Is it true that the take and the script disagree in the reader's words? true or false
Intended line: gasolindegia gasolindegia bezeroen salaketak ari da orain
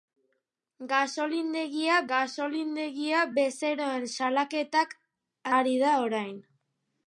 false